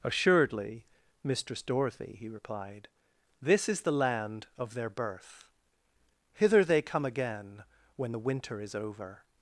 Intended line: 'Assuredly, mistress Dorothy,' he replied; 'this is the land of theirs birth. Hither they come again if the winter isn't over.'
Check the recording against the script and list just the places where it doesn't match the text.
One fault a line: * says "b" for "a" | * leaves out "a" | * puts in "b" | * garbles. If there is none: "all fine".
* says "their" for "theirs"
* says "when" for "if"
* says "is" for "isn't"